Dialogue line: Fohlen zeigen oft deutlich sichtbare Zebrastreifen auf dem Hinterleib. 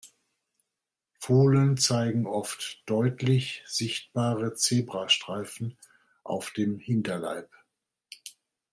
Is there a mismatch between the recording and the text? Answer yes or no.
no